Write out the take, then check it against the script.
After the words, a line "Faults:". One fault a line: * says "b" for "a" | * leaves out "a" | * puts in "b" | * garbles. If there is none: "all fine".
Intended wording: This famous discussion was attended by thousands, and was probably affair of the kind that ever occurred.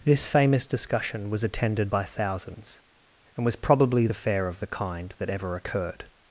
This famous discussion was attended by thousands, and was probably affair of the kind that ever occurred.
Faults:
all fine